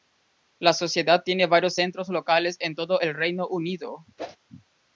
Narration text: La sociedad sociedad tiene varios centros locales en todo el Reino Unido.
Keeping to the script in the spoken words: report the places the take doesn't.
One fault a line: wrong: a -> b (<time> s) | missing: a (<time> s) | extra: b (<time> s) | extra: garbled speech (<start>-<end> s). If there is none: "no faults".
missing: sociedad (1.2 s)